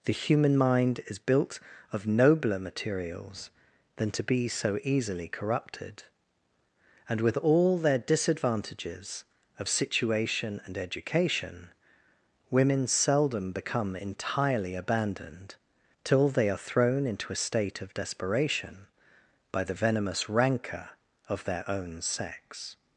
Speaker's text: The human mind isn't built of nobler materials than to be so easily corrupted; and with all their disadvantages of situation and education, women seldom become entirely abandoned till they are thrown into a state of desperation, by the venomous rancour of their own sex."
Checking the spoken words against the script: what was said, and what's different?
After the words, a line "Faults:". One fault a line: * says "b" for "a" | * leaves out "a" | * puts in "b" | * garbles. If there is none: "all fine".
The human mind is built of nobler materials than to be so easily corrupted; and with all their disadvantages of situation and education, women seldom become entirely abandoned till they are thrown into a state of desperation, by the venomous rancour of their own sex."
Faults:
* says "is" for "isn't"